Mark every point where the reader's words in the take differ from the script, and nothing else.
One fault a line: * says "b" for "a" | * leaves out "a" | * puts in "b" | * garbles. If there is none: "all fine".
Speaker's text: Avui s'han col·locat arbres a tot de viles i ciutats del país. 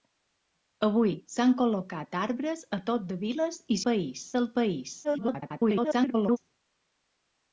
* says "país" for "ciutats"
* garbles